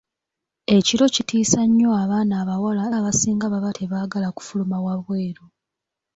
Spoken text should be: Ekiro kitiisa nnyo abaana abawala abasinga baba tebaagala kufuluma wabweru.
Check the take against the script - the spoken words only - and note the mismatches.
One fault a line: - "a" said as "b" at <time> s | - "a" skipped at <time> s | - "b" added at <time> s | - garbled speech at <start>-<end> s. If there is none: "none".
none